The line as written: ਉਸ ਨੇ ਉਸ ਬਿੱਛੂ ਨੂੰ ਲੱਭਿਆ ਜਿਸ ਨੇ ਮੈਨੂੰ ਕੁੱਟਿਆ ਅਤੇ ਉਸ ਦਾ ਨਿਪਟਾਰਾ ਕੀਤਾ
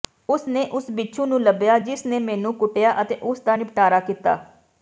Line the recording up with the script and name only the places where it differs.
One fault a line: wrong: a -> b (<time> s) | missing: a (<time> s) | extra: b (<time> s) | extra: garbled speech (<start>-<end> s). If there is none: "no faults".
no faults